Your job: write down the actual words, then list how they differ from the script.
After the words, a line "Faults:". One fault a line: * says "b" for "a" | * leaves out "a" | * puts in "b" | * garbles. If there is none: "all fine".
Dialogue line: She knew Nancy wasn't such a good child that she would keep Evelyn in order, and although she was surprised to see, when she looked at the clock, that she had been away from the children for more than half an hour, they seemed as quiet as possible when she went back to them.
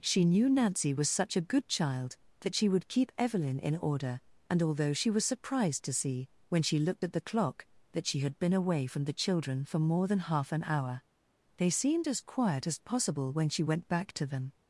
She knew Nancy was such a good child that she would keep Evelyn in order, and although she was surprised to see, when she looked at the clock, that she had been away from the children for more than half an hour, they seemed as quiet as possible when she went back to them.
Faults:
* says "was" for "wasn't"